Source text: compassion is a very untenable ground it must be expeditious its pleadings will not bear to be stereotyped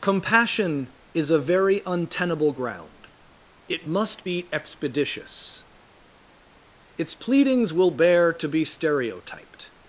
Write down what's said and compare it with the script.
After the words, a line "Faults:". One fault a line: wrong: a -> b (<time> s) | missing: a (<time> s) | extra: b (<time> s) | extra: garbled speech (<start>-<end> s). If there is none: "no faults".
compassion is a very untenable ground it must be expeditious its pleadings will bear to be stereotyped
Faults:
missing: not (7.9 s)